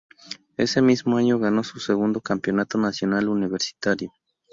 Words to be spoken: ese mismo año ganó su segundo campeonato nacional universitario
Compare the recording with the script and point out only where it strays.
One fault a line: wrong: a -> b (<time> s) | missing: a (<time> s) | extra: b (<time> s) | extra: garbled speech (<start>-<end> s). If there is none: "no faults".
no faults